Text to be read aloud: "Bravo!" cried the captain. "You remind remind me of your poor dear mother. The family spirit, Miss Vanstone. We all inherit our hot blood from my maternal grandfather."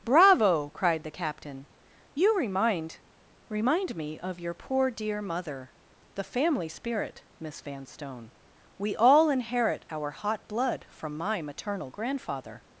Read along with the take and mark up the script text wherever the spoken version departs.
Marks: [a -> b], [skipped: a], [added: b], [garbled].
"Bravo!" cried the captain. "You remind remind me of your poor dear mother. The family spirit, Miss Vanstone. We all inherit our hot blood from my maternal grandfather."